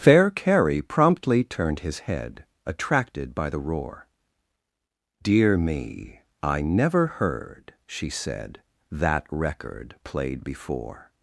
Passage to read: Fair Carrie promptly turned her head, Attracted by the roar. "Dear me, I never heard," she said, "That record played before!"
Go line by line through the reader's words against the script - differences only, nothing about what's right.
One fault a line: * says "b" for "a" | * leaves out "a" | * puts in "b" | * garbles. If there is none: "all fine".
* says "his" for "her"